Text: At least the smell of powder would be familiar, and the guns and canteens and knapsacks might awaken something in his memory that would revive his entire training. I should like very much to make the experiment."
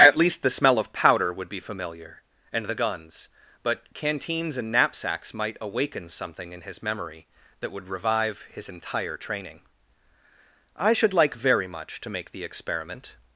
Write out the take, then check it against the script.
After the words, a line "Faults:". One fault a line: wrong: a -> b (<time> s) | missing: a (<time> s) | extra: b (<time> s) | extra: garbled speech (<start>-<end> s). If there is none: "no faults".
At least the smell of powder would be familiar, and the guns but canteens and knapsacks might awaken something in his memory that would revive his entire training. I should like very much to make the experiment."
Faults:
wrong: and -> but (3.6 s)